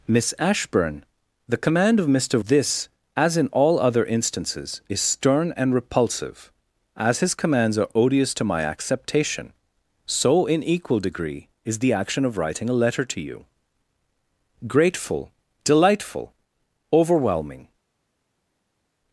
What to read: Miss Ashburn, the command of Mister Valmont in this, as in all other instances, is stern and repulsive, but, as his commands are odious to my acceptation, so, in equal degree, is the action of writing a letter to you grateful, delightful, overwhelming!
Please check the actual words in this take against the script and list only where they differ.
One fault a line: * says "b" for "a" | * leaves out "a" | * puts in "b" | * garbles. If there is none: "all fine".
* leaves out "Valmont in"
* leaves out "but"